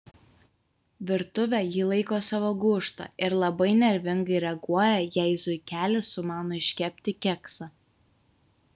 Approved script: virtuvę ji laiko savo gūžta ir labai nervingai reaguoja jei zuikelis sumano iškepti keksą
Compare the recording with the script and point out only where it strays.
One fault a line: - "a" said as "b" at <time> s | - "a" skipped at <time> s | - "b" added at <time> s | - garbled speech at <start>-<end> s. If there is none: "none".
none